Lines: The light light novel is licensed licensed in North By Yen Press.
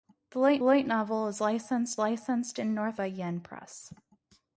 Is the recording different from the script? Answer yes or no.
no